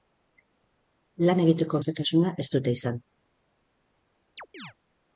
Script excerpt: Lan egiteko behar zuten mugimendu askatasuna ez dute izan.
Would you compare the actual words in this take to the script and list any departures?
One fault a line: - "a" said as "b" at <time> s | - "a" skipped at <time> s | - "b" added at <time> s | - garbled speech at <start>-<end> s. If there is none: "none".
- "behar zuten mugimendu" skipped at 1.8 s